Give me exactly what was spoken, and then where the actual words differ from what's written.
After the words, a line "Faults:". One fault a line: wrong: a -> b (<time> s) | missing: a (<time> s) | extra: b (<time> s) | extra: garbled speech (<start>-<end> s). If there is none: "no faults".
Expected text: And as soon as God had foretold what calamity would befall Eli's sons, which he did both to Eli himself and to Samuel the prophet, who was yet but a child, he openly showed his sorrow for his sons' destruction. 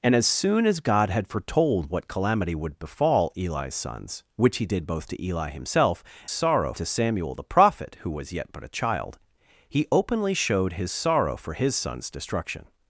And as soon as God had foretold what calamity would befall Eli's sons, which he did both to Eli himself sorrow to Samuel the prophet, who was yet but a child, he openly showed his sorrow for his sons' destruction.
Faults:
wrong: and -> sorrow (6.3 s)